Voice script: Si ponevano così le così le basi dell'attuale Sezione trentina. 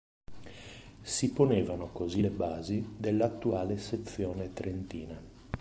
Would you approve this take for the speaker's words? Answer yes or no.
no